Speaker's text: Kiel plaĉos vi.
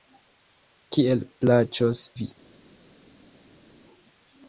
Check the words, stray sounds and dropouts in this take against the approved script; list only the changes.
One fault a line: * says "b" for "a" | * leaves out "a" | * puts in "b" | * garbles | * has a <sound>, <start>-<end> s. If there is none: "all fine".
all fine